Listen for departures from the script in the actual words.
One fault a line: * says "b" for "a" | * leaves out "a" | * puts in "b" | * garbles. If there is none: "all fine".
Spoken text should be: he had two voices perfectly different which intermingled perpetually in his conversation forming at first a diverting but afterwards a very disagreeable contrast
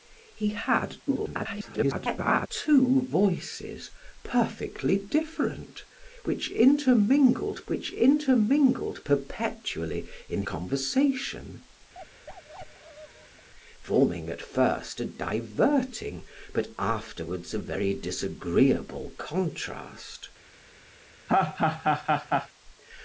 * garbles
* puts in "which intermingled"
* leaves out "his"